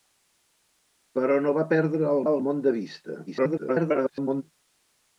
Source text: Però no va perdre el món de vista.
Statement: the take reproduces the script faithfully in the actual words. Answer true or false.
false